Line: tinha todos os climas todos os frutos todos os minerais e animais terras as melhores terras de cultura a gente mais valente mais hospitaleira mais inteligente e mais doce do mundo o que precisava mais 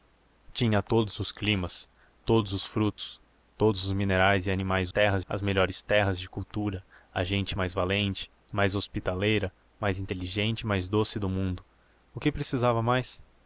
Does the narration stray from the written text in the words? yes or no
no